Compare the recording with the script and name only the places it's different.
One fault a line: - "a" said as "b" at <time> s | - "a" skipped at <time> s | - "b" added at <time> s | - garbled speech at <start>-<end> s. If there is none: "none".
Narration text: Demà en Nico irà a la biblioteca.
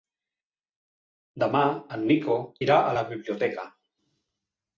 none